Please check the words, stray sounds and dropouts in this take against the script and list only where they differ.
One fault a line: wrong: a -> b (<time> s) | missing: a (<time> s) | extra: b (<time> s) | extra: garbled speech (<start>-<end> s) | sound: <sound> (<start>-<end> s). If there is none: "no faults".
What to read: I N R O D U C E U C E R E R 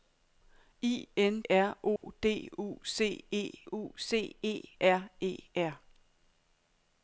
sound: dropout (2.0-2.0 s)